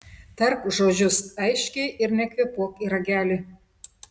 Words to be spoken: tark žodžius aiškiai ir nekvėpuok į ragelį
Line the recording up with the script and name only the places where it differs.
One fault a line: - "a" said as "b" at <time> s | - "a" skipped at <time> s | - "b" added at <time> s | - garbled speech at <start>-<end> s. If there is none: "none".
none